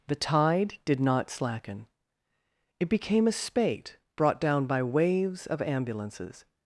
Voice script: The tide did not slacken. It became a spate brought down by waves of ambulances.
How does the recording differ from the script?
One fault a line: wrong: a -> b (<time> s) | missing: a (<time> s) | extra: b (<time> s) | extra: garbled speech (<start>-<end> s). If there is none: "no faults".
no faults